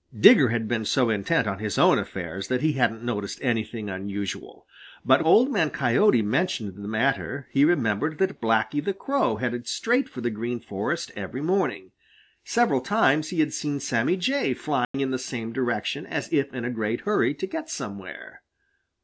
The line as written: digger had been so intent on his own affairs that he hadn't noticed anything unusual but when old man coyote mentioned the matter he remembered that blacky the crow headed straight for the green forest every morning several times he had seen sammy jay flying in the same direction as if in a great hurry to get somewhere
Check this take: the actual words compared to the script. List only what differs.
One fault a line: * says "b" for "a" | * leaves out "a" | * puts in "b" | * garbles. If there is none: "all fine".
* leaves out "when"